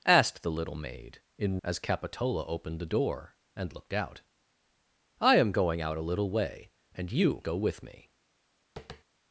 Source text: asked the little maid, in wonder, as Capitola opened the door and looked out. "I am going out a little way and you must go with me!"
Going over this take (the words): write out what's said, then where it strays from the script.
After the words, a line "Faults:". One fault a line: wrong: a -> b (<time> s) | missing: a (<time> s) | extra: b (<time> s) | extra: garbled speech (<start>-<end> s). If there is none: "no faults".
asked the little maid, in as Capitola opened the door and looked out. "I am going out a little way and you go with me!"
Faults:
missing: wonder (1.6 s)
missing: must (7.4 s)